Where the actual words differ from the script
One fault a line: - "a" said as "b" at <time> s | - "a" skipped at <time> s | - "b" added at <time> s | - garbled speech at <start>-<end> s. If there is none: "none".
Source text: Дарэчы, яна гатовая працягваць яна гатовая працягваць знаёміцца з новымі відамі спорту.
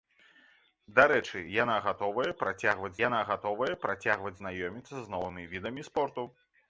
none